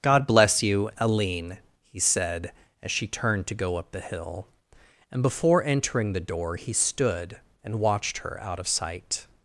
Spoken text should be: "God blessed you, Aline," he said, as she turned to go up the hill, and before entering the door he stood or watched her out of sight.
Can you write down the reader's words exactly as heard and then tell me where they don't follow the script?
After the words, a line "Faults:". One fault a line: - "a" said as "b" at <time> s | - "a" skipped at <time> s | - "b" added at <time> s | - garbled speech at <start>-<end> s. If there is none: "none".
"God bless you, Aline," he said, as she turned to go up the hill, and before entering the door he stood and watched her out of sight.
Faults:
- "blessed" said as "bless" at 0.2 s
- "or" said as "and" at 7.6 s